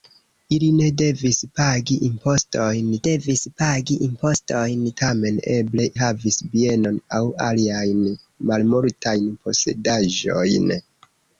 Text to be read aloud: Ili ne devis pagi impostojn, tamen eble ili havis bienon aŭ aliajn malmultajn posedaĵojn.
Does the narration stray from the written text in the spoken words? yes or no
yes